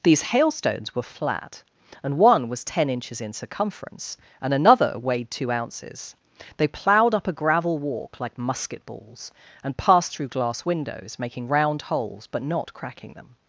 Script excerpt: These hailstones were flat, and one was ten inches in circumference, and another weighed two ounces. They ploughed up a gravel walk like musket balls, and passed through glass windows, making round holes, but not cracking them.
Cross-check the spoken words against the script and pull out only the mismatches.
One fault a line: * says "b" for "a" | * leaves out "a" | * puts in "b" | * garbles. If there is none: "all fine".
all fine